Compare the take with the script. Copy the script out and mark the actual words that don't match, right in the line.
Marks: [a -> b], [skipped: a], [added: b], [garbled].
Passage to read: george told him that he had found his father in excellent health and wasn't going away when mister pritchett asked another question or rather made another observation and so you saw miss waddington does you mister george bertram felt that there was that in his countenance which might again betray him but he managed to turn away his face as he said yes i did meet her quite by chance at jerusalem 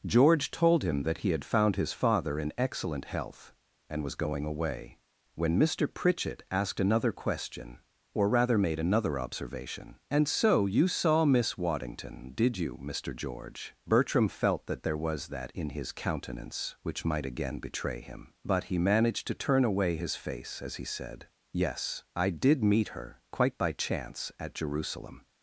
george told him that he had found his father in excellent health and [wasn't -> was] going away when mister pritchett asked another question or rather made another observation and so you saw miss waddington [does -> did] you mister george bertram felt that there was that in his countenance which might again betray him but he managed to turn away his face as he said yes i did meet her quite by chance at jerusalem